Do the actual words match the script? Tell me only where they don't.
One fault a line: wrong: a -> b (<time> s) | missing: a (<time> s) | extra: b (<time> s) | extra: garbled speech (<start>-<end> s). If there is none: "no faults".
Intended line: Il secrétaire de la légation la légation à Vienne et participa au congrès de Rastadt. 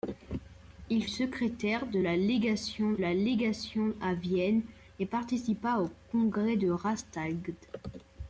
no faults